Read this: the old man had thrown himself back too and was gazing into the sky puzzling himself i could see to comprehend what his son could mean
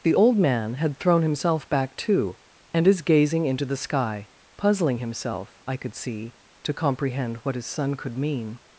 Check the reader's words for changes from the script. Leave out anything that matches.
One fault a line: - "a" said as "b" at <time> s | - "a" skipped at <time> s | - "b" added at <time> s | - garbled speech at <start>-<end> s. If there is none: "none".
- "was" said as "is" at 2.9 s